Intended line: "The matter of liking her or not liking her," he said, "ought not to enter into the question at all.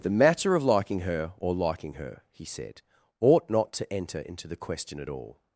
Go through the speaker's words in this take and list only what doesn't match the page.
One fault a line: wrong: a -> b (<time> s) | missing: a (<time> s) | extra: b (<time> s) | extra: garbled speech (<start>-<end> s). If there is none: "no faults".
missing: not (1.5 s)